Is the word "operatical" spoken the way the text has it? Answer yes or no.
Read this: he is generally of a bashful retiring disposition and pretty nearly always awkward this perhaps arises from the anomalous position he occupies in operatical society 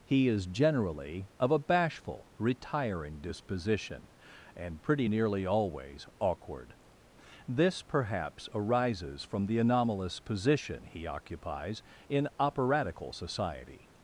yes